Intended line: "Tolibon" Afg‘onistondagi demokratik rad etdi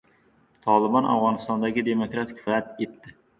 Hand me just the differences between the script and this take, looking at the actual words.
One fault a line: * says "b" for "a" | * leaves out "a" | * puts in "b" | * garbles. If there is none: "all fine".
all fine